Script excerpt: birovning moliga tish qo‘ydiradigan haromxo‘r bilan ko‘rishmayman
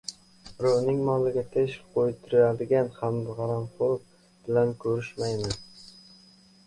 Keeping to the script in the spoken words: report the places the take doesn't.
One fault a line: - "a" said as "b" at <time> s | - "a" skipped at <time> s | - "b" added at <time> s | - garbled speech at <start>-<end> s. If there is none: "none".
none